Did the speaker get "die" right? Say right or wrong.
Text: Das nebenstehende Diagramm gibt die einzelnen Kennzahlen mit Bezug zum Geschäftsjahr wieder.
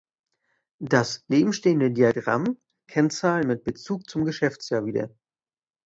wrong